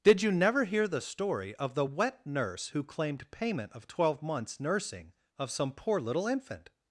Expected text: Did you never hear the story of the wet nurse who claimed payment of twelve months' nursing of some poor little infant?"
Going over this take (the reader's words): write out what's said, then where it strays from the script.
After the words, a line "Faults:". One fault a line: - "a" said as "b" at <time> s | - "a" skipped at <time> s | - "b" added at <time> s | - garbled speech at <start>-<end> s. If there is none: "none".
Did you never hear the story of the wet nurse who claimed payment of twelve months' nursing of some poor little infant?"
Faults:
none